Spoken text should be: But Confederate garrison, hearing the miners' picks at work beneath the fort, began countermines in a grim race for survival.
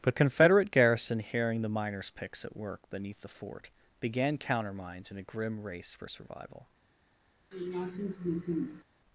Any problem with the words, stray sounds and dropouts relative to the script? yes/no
yes